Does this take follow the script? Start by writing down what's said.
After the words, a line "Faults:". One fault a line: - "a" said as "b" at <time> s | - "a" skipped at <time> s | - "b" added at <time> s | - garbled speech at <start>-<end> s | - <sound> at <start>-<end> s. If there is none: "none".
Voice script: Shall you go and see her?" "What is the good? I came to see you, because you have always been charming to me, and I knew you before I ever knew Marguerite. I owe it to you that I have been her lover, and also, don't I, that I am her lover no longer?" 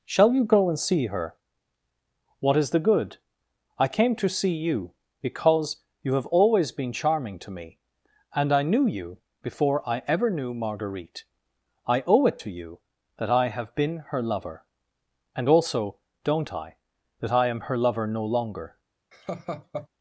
Shall you go and see her?" "What is the good? I came to see you, because you have always been charming to me, and I knew you before I ever knew Marguerite. I owe it to you that I have been her lover, and also, don't I, that I am her lover no longer?"
Faults:
- laugh at 19.1-19.9 s